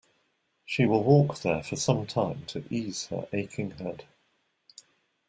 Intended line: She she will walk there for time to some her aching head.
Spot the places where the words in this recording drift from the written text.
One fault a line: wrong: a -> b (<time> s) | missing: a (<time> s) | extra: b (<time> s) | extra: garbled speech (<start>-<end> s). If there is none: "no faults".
missing: she (0.8 s)
extra: some (1.8 s)
wrong: some -> ease (2.7 s)